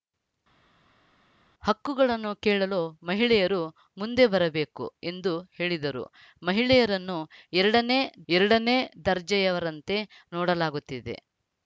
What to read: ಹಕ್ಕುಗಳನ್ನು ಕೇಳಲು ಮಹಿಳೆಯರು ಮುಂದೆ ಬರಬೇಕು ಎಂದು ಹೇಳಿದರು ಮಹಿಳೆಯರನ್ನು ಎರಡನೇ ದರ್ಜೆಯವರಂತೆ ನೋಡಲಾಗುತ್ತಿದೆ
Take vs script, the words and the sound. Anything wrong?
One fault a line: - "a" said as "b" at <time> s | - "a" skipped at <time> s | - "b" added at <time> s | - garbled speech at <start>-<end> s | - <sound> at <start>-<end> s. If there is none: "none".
- "ಎರಡನೇ" added at 8.3 s